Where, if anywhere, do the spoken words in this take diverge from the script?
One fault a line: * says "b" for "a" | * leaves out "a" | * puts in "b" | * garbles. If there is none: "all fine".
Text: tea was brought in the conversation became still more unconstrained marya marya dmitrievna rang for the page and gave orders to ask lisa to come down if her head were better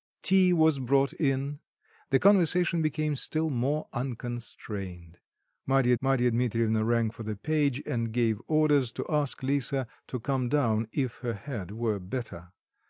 all fine